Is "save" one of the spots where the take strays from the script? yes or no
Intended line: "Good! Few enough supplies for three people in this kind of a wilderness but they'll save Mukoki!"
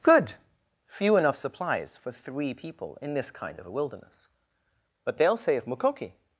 yes